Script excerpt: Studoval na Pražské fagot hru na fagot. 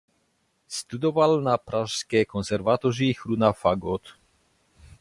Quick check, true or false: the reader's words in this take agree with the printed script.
false